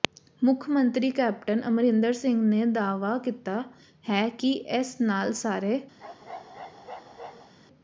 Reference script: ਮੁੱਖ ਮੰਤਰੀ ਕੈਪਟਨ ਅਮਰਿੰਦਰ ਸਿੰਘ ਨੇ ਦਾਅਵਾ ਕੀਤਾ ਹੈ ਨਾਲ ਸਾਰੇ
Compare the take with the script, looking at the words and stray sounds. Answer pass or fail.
fail